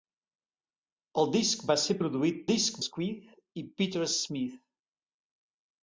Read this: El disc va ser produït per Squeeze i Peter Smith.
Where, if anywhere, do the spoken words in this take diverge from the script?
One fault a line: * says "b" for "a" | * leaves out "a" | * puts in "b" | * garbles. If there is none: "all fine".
* says "disc" for "per"